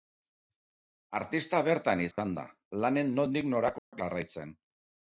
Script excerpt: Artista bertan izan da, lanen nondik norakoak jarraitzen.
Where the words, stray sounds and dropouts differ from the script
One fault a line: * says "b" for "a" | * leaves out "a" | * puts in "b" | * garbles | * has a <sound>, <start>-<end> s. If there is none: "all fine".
* has a dropout, 2.1-2.2 s
* has a dropout, 3.8-3.9 s